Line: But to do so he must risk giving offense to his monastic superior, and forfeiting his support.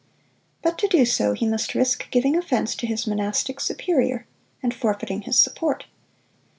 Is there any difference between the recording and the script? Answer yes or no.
no